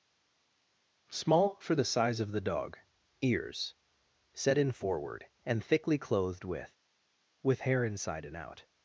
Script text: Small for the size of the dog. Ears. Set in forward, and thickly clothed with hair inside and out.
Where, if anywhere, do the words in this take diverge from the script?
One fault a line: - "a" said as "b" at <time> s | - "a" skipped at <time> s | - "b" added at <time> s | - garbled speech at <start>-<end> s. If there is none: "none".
- "with" added at 7.4 s